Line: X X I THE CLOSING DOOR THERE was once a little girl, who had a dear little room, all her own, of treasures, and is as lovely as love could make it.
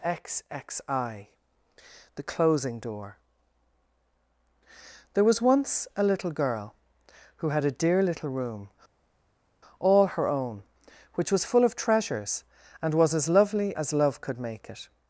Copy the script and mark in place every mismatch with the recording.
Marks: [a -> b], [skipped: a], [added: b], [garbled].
X X I THE CLOSING DOOR THERE was once a little girl, who had a dear little room, all her own, [added: which was full] of treasures, and [is -> was] as lovely as love could make it.